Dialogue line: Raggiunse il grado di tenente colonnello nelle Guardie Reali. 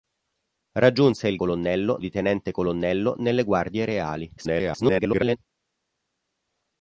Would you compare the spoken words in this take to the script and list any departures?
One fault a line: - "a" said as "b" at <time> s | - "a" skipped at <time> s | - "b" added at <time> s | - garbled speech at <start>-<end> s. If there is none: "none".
- "grado" said as "colonnello" at 1.3 s
- garbled speech at 4.4-5.4 s